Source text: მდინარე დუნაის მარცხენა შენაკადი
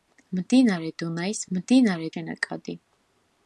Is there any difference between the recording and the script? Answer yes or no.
yes